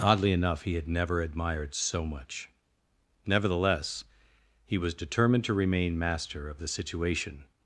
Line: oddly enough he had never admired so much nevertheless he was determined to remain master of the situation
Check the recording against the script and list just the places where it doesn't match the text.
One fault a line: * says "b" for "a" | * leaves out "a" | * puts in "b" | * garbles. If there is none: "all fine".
all fine